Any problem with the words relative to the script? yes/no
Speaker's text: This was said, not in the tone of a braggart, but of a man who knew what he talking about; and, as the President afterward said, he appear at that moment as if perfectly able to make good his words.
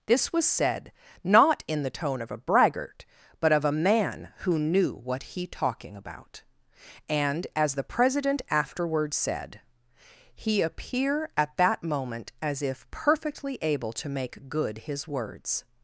no